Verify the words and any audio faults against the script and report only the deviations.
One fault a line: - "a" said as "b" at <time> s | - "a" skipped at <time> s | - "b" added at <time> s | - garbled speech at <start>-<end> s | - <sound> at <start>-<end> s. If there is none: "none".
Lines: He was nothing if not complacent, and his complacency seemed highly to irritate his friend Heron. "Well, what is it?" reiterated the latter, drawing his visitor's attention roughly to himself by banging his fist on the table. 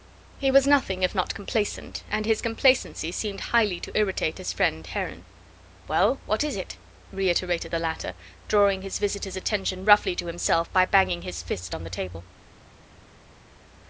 none